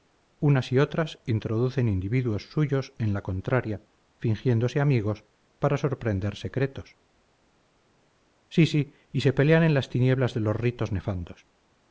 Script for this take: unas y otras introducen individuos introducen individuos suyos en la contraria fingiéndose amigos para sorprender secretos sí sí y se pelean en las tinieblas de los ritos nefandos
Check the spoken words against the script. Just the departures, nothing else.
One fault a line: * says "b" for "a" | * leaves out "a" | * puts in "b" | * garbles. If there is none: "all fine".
* leaves out "introducen individuos"